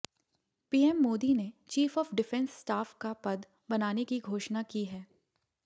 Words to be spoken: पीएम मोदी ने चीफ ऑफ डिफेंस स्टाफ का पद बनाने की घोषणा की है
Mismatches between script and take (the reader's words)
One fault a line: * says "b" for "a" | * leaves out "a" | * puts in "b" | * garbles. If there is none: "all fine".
all fine